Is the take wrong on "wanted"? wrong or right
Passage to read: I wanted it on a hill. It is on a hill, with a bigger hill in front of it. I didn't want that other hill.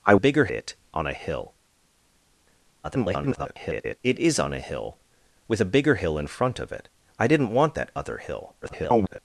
wrong